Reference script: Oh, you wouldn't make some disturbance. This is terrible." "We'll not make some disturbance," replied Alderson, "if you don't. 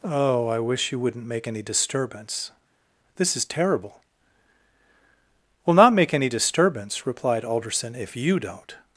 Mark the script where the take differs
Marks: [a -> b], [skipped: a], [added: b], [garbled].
Oh, [added: I wish] you wouldn't make [some -> any] disturbance. This is terrible." "We'll not make [some -> any] disturbance," replied Alderson, "if you don't.